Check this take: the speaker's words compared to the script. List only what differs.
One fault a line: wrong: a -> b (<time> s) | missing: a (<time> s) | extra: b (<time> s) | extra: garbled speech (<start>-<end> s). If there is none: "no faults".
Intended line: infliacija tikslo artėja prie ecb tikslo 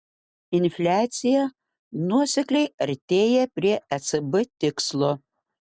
wrong: tikslo -> nuosekliai (2.1 s)